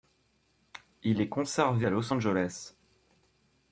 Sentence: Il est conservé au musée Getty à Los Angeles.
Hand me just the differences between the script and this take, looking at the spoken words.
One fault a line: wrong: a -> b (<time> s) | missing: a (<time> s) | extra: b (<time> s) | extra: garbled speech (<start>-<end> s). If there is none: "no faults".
missing: au musée Getty (1.9 s)